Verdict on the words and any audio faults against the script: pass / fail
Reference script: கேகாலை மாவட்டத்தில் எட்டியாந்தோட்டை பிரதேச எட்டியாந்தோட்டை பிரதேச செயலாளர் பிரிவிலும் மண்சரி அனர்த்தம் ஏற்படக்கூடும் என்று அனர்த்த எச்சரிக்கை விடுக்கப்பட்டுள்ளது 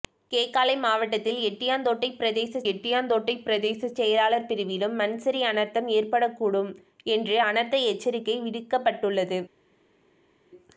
pass